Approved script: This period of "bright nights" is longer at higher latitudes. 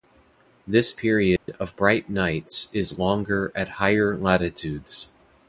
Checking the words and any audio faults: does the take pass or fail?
fail